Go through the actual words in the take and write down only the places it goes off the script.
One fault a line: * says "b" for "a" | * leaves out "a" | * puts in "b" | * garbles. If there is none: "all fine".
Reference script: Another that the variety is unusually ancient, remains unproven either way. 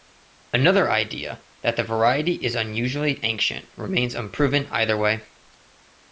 * puts in "idea"